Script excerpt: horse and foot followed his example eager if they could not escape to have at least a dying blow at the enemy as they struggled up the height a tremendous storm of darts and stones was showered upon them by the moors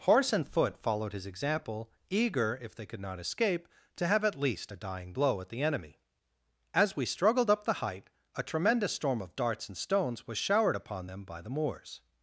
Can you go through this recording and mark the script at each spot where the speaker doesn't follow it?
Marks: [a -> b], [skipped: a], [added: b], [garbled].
horse and foot followed his example eager if they could not escape to have at least a dying blow at the enemy as [they -> we] struggled up the height a tremendous storm of darts and stones was showered upon them by the moors